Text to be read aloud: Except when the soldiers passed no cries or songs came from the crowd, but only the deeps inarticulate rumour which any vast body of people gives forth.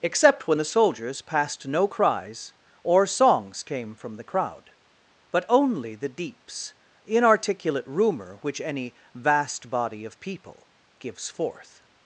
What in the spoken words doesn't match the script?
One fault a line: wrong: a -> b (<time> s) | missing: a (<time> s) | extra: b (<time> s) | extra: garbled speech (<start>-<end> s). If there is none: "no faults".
no faults